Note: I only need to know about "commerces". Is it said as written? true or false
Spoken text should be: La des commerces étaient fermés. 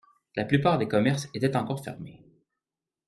true